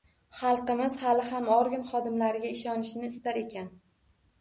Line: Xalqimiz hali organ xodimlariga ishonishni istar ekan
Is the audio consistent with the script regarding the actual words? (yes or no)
no